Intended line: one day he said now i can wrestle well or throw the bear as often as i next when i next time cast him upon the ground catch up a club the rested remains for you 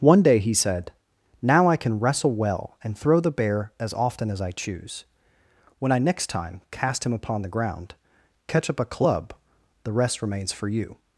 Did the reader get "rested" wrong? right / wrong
wrong